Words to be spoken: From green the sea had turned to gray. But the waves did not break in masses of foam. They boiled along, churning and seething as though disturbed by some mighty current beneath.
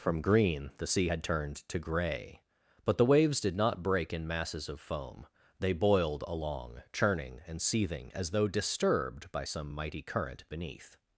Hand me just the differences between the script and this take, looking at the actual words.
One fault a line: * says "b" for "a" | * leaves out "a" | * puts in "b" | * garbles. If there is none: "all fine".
all fine